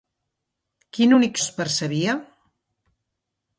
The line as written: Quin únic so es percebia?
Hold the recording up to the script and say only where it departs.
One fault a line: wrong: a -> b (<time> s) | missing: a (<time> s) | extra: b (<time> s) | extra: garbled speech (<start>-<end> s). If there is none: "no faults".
missing: so (1.4 s)